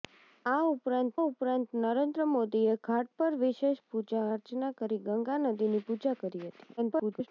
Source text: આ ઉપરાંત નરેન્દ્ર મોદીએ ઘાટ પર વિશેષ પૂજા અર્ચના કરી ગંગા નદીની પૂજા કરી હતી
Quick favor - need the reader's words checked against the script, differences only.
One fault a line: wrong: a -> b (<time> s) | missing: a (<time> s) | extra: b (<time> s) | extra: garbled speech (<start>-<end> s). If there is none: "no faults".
extra: ઉપરાંત (1.2 s)
extra: garbled speech (6.8-7.3 s)